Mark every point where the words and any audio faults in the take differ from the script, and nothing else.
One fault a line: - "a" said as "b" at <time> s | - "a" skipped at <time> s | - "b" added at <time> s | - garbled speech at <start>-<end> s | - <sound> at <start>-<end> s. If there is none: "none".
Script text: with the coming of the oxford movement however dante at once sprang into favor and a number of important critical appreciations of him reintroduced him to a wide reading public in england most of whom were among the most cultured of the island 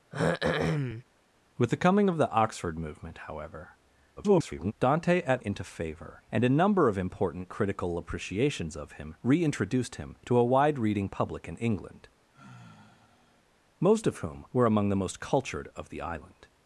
- throat clearing at 0.1-1.0 s
- garbled speech at 4.2-4.7 s
- "once sprang" skipped at 5.4 s
- sigh at 12.3-13.4 s